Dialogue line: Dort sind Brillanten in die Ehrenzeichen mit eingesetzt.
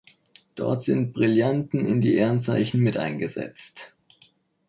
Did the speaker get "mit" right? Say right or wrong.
right